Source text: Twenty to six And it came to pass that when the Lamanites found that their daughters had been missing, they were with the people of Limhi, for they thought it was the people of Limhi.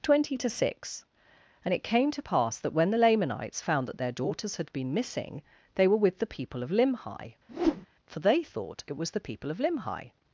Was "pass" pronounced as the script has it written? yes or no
yes